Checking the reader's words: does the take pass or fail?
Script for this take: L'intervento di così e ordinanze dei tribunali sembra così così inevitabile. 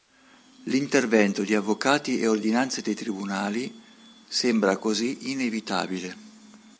fail